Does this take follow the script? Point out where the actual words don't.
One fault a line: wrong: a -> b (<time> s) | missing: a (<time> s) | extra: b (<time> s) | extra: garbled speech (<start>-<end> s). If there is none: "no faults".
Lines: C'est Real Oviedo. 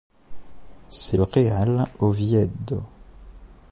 no faults